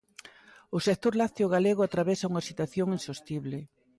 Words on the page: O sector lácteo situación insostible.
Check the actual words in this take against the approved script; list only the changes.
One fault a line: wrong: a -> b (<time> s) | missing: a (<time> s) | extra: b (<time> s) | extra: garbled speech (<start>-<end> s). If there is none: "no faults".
extra: galego atravesa unha (1.6 s)